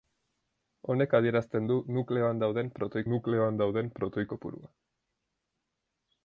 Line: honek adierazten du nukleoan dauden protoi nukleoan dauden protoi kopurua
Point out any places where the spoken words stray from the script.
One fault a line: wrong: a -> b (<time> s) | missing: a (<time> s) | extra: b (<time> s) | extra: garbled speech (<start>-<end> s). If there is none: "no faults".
no faults